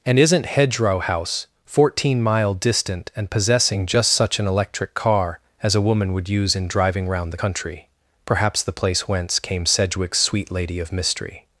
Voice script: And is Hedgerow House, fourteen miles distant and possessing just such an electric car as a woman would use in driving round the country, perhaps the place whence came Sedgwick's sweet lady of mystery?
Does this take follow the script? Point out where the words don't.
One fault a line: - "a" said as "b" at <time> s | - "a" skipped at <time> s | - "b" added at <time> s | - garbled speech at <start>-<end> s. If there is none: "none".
- "is" said as "isn't" at 0.2 s
- "miles" said as "mile" at 2.2 s